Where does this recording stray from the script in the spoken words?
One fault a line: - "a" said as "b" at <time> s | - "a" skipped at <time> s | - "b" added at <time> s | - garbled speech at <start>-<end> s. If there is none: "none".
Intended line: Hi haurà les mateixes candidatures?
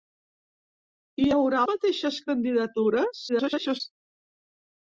- "les" skipped at 1.6 s
- garbled speech at 3.3-3.8 s